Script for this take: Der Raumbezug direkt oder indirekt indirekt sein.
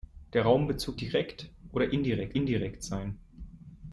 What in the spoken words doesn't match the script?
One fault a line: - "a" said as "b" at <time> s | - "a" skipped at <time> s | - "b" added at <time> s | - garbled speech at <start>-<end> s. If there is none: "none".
none